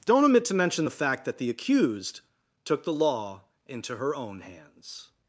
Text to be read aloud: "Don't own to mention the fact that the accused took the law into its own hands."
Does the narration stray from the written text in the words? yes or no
yes